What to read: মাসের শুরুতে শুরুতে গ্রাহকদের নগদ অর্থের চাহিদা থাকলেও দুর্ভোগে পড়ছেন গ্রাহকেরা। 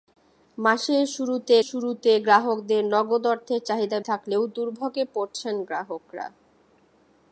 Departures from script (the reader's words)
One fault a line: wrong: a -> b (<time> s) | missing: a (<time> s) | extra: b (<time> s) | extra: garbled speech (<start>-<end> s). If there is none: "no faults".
no faults